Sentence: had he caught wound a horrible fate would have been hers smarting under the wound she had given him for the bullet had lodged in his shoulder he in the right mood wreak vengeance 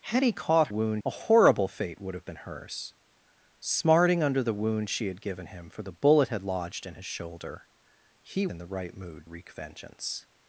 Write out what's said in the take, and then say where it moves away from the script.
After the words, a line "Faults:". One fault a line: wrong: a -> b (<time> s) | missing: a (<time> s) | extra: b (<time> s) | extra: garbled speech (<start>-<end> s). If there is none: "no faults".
had he caught wound a horrible fate would have been hers smarting under the wound she had given him for the bullet had lodged in his shoulder he in the right mood wreak vengeance
Faults:
no faults